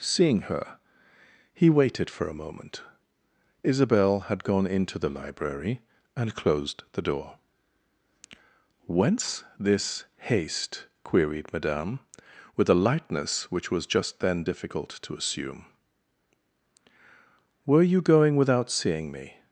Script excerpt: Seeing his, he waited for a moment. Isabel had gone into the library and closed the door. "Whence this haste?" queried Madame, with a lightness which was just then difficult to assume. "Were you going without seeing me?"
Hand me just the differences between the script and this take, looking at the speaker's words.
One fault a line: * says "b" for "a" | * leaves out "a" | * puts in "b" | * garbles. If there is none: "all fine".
* says "her" for "his"